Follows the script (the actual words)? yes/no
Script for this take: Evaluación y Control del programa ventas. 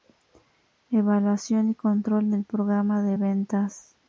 no